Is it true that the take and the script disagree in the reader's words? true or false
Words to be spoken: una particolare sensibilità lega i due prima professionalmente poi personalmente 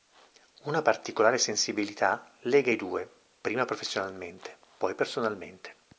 false